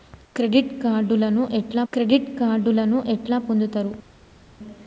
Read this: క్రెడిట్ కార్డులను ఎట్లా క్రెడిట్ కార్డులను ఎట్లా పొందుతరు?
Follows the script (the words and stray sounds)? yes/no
yes